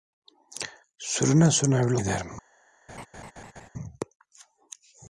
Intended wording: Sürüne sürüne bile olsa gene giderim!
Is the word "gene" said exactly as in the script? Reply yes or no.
no